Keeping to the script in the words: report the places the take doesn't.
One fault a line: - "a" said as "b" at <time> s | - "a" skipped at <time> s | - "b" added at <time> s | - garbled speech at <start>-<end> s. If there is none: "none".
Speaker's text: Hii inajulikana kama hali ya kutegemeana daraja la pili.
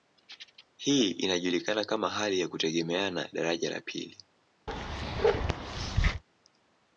none